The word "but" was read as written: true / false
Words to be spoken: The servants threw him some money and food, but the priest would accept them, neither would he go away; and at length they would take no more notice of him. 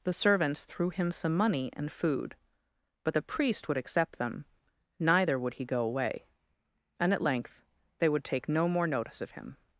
true